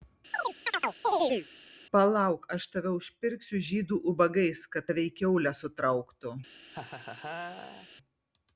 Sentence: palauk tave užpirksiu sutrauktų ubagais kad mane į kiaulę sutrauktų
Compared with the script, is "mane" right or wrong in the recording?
wrong